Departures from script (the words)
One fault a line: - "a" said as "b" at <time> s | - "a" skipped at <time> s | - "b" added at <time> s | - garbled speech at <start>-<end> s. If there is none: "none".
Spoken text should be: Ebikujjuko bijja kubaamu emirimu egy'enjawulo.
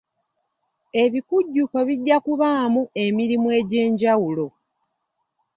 none